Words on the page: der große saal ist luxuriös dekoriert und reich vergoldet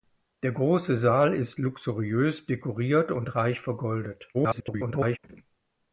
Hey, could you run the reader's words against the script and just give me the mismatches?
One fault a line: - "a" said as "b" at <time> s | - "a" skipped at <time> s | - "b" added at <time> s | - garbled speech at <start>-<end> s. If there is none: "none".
- garbled speech at 4.3-5.2 s